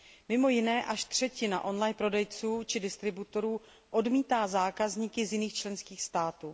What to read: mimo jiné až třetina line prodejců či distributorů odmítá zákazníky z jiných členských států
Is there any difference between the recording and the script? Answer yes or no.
yes